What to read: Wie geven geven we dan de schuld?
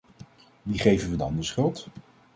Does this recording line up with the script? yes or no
no